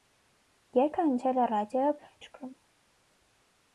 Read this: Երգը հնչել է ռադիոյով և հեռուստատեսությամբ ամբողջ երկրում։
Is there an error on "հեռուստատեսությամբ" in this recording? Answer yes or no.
yes